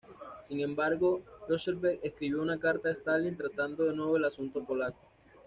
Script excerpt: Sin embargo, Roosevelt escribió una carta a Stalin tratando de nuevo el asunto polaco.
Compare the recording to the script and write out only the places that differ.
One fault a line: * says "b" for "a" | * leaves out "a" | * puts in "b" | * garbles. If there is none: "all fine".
all fine